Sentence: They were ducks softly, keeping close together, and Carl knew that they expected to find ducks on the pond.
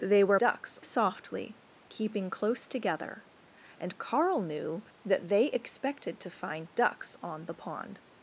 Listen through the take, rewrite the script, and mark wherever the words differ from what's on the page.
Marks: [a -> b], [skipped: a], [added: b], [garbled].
They were ducks softly, keeping close together, and Carl knew that they expected to find ducks on the pond.